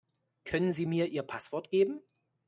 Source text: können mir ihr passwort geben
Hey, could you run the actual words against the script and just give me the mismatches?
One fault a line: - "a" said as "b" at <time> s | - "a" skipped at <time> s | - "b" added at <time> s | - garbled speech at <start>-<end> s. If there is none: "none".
- "sie" added at 0.7 s